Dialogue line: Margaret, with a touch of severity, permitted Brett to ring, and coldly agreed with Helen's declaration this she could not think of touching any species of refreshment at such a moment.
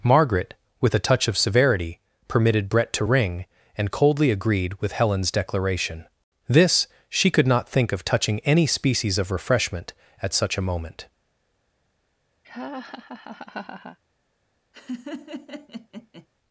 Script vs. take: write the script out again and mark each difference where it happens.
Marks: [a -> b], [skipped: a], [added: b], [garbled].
Margaret, with a touch of severity, permitted Brett to ring, and coldly agreed with Helen's declaration this she could not think of touching any species of refreshment at such a moment.